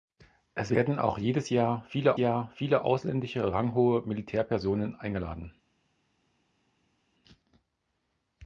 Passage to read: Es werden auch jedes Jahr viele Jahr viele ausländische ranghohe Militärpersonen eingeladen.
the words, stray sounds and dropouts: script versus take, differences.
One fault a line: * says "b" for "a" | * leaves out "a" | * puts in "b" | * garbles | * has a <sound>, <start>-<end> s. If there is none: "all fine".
all fine